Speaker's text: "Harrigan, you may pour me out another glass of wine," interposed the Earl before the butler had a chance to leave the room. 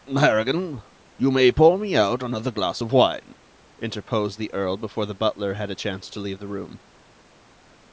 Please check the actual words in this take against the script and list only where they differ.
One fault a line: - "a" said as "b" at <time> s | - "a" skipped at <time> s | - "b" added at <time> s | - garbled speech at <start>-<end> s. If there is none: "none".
none